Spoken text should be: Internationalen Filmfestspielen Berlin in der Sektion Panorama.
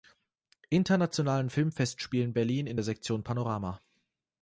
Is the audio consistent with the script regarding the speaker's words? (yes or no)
yes